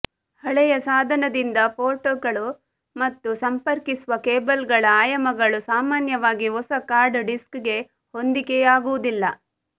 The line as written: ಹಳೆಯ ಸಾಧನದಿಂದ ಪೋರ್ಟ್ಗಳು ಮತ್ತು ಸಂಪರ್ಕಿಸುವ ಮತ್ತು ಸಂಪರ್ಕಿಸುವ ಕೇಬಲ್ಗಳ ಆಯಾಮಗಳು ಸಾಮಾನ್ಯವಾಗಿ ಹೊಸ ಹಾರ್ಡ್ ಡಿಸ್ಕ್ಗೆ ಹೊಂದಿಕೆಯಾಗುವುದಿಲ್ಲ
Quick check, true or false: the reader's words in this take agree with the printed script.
false